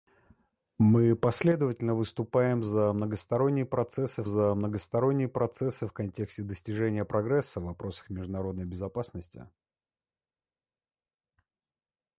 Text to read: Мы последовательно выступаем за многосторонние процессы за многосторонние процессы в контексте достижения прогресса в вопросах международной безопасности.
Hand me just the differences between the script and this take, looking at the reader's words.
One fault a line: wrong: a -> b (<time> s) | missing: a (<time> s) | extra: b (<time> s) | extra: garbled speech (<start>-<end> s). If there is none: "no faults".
no faults